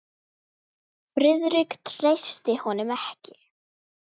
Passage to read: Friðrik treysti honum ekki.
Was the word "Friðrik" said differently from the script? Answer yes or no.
no